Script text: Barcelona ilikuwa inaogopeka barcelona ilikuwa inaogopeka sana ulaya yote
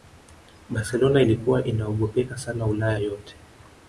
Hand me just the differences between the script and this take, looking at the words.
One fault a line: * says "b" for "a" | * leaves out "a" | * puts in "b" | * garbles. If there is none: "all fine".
* leaves out "barcelona ilikuwa inaogopeka"